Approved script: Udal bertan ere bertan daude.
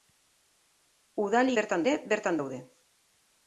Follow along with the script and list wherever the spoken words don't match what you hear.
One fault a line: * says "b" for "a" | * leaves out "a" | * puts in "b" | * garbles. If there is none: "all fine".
all fine